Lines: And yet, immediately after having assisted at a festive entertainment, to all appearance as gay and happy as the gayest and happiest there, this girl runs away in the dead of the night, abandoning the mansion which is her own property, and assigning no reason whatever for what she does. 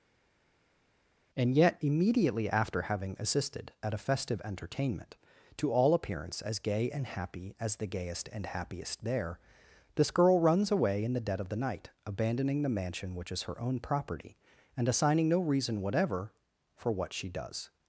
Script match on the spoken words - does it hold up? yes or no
yes